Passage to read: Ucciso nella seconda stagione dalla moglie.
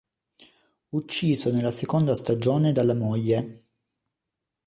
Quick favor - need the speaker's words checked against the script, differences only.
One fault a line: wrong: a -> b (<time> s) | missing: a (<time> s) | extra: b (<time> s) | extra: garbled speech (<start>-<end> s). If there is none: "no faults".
no faults